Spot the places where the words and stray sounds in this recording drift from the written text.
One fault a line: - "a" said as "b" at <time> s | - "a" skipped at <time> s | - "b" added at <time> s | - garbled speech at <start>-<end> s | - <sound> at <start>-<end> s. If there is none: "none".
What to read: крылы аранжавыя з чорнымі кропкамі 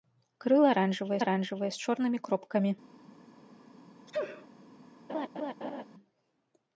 - "аранжавыя" added at 1.2 s
- sneeze at 4.1-4.5 s
- laugh at 5.1-5.8 s